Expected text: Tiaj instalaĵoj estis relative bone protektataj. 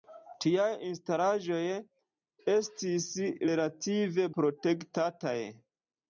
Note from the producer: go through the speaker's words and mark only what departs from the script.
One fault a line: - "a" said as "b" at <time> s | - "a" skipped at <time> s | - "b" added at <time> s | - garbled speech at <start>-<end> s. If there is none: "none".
- "bone" skipped at 4.3 s